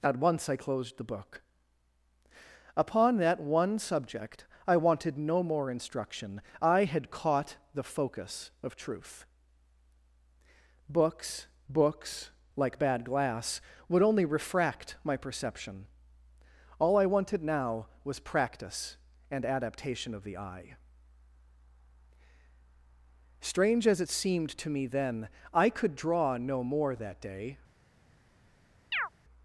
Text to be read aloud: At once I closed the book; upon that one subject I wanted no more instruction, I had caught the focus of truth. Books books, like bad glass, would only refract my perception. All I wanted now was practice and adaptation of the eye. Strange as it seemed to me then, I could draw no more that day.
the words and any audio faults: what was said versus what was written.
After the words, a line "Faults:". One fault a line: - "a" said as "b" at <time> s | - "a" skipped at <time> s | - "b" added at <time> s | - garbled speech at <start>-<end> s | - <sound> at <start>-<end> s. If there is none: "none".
At once I closed the book; upon that one subject I wanted no more instruction, I had caught the focus of truth. Books books, like bad glass, would only refract my perception. All I wanted now was practice and adaptation of the eye. Strange as it seemed to me then, I could draw no more that day.
Faults:
- chirp at 28.9-29.1 s